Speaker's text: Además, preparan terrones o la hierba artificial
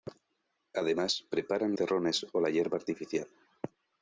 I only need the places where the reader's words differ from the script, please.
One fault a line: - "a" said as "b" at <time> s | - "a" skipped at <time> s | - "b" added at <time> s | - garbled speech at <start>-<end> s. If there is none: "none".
none